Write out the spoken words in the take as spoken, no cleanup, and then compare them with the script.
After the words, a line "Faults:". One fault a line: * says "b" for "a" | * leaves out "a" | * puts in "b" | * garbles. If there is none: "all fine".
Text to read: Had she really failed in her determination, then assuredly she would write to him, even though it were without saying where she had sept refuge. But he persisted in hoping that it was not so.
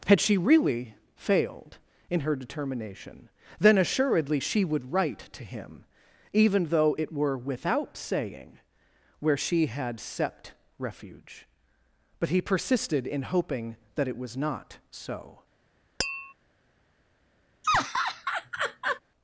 Had she really failed in her determination, then assuredly she would write to him, even though it were without saying where she had sept refuge. But he persisted in hoping that it was not so.
Faults:
all fine